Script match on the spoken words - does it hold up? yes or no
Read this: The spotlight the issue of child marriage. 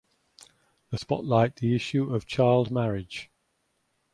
yes